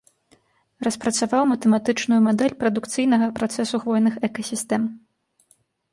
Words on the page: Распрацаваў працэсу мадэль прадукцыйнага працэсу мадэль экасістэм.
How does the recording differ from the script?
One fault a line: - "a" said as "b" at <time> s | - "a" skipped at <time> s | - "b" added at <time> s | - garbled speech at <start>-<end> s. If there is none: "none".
- "працэсу" said as "матэматычную" at 1.5 s
- "мадэль" said as "хвойных" at 3.8 s